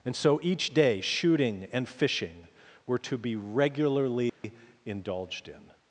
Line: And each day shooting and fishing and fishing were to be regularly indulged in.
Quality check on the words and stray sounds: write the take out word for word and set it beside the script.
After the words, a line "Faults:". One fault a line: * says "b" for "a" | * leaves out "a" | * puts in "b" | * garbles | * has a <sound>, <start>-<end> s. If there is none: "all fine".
And so each day shooting and fishing were to be regularly indulged in.
Faults:
* puts in "so"
* leaves out "and fishing"
* has a dropout, 4.3-4.4 s